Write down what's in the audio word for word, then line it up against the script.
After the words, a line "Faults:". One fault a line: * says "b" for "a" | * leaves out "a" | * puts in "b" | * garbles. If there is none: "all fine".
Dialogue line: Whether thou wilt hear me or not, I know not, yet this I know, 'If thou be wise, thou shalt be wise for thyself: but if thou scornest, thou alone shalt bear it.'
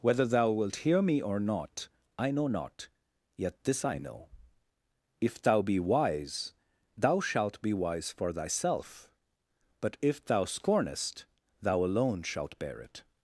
Whether thou wilt hear me or not, I know not, yet this I know, 'If thou be wise, thou shalt be wise for thyself: but if thou scornest, thou alone shalt bear it.'
Faults:
all fine